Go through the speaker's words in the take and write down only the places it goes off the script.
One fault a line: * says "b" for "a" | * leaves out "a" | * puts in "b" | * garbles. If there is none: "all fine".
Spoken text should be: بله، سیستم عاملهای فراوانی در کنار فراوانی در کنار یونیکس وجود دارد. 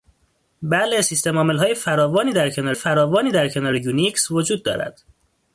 all fine